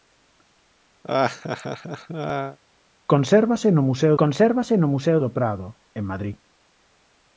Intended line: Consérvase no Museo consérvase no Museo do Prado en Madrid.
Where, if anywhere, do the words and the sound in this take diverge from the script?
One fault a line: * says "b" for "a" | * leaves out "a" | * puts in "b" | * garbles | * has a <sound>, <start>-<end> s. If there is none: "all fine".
* has a laugh, 1.0-2.6 s